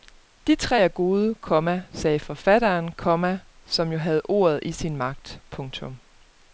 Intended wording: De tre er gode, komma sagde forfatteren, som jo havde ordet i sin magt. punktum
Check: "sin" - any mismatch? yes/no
no